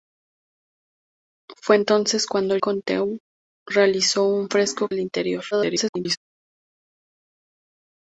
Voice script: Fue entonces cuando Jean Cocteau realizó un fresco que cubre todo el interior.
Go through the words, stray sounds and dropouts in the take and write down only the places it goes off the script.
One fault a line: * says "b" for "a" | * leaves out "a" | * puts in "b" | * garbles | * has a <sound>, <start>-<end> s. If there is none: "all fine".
* leaves out "Jean"
* leaves out "que cubre todo"
* garbles